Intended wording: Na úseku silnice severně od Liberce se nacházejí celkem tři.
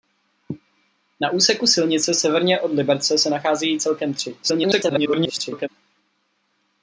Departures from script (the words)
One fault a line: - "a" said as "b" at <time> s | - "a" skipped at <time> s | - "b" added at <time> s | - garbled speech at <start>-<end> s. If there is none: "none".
- garbled speech at 4.4-5.7 s